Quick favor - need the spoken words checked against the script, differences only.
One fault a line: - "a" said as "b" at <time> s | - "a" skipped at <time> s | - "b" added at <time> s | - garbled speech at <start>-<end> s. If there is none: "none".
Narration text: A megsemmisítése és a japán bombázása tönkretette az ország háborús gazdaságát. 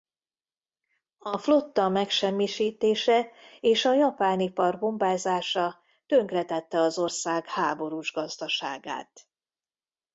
- "flotta" added at 1.4 s
- "ipar" added at 4.4 s